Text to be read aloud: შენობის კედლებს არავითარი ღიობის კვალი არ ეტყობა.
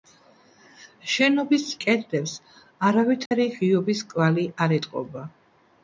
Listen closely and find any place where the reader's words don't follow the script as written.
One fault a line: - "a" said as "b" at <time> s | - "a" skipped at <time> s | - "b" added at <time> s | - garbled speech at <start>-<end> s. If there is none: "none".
none